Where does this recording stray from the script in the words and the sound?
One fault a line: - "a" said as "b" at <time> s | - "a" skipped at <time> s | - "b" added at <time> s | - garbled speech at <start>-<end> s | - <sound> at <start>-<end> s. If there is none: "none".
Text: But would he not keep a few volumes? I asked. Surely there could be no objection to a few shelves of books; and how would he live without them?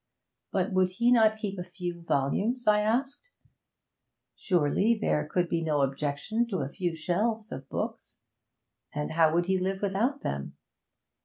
none